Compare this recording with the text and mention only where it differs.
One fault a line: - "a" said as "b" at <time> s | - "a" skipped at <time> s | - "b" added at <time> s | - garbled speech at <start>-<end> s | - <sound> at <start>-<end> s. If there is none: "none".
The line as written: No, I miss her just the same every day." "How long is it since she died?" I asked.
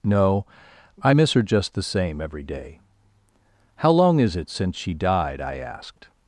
none